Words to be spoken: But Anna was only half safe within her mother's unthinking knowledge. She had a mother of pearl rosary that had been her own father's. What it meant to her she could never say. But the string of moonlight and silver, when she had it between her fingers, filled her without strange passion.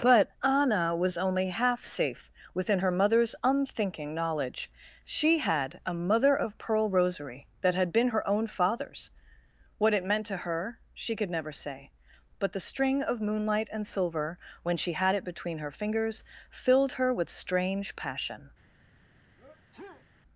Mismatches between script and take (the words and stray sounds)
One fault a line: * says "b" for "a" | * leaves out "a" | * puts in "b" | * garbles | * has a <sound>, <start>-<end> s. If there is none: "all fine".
* says "with" for "without"
* has a sneeze, 19.4-20.1 s